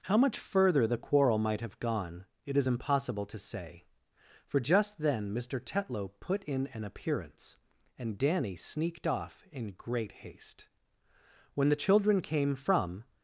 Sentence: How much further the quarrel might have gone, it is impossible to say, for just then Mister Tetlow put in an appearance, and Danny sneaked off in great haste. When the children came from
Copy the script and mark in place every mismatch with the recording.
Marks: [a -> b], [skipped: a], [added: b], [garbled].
How much further the quarrel might have gone, it is impossible to say, for just then Mister Tetlow put in an appearance, and Danny sneaked off in great haste. When the children came from